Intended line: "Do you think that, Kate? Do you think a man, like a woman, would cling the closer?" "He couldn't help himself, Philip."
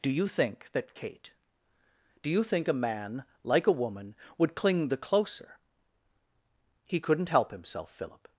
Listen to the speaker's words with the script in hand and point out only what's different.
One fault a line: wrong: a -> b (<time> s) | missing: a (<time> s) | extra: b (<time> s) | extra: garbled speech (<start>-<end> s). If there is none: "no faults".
no faults